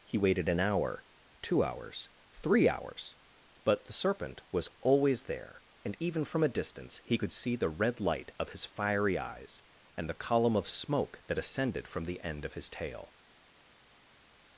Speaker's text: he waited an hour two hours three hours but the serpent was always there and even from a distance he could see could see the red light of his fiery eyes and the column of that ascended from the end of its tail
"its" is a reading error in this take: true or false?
true